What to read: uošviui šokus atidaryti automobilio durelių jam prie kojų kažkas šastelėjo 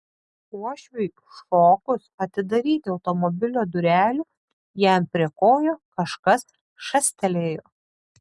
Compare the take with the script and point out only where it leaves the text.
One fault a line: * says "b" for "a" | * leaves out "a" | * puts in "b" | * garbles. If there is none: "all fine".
all fine